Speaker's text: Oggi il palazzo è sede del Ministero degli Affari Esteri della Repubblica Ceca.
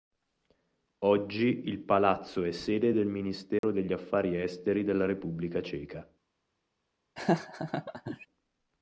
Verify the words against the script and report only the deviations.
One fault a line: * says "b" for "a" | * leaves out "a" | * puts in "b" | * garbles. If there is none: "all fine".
all fine